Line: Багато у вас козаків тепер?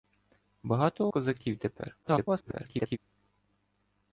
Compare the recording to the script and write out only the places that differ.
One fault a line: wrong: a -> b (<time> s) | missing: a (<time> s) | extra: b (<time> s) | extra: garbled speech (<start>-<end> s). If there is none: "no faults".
missing: вас (1.1 s)
extra: garbled speech (2.0-3.0 s)